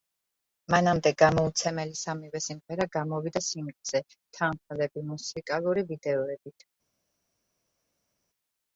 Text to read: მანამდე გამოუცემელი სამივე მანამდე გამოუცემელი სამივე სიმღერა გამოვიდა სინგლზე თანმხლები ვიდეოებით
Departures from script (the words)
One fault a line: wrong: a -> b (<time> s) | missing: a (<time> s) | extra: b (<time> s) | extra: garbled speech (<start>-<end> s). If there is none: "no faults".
missing: მანამდე გამოუცემელი სამივე (2.4 s)
extra: მუსიკალური (5.1 s)